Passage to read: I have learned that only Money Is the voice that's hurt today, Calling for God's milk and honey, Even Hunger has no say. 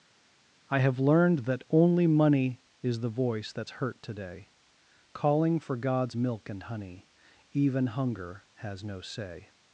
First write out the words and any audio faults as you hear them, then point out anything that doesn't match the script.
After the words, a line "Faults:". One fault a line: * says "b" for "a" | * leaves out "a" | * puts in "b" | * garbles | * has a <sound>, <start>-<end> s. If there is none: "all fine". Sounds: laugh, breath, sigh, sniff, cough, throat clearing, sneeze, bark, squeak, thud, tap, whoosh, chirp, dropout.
I have learned that only Money Is the voice that's hurt today, Calling for God's milk and honey, Even Hunger has no say.
Faults:
all fine